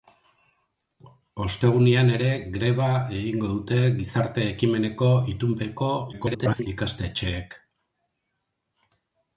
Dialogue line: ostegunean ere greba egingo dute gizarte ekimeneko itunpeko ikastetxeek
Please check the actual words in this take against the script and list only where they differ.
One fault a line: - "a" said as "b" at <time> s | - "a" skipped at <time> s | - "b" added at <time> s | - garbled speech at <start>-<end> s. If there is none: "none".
- garbled speech at 6.1-6.7 s